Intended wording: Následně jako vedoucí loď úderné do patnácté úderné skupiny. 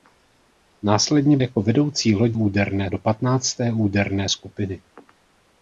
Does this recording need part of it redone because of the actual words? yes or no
no